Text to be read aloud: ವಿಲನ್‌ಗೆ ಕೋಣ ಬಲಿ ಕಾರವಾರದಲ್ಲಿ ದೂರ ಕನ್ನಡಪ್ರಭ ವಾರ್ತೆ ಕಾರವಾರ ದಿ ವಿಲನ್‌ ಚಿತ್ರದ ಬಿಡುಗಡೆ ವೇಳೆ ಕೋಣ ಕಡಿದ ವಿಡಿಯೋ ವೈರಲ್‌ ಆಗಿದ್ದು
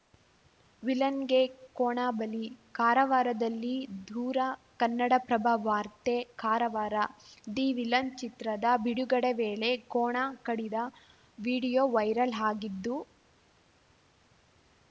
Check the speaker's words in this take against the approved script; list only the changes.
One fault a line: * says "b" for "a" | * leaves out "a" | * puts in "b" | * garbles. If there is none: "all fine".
all fine